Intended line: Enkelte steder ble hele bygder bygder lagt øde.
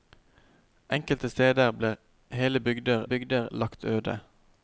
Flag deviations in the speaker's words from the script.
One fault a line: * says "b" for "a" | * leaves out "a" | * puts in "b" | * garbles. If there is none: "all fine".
all fine